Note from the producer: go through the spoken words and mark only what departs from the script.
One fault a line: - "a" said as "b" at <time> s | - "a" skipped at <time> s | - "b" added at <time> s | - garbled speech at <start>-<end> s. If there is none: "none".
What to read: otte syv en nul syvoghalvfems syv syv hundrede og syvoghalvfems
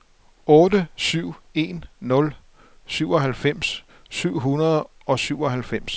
- "syv" skipped at 4.4 s